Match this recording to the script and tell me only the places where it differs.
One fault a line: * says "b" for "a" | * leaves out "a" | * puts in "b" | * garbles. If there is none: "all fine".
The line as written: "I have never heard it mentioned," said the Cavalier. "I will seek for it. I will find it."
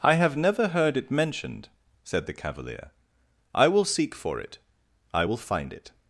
all fine